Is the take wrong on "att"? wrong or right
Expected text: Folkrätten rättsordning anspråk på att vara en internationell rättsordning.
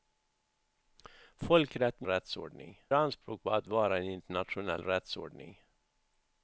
right